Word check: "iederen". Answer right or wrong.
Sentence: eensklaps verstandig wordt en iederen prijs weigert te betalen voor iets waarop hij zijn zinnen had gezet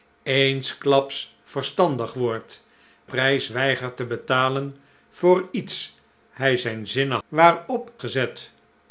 wrong